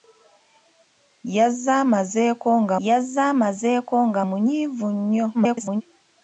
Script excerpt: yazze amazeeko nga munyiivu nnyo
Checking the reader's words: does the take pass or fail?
fail